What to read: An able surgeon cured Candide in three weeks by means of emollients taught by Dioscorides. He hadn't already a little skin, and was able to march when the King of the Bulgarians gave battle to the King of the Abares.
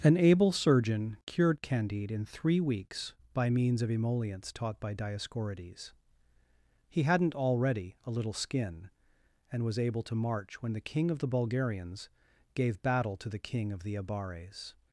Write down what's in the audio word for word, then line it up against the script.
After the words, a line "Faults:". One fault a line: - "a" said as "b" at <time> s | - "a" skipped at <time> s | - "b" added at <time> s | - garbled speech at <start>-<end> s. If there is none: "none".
An able surgeon cured Candide in three weeks by means of emollients taught by Dioscorides. He hadn't already a little skin, and was able to march when the King of the Bulgarians gave battle to the King of the Abares.
Faults:
none